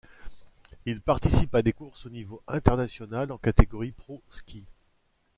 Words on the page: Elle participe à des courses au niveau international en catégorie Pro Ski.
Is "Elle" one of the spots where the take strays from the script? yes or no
yes